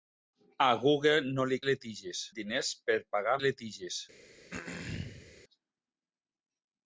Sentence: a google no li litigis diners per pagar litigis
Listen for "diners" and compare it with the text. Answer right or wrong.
right